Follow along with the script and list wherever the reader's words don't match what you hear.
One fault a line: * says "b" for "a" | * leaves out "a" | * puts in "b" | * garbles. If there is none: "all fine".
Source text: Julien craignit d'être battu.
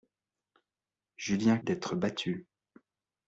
* leaves out "craignit"